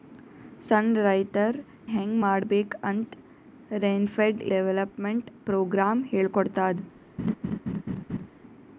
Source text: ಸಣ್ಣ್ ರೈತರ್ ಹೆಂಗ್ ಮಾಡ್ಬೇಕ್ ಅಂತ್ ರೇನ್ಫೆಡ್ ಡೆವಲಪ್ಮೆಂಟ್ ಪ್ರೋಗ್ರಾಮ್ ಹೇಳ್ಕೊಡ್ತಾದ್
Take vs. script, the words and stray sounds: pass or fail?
fail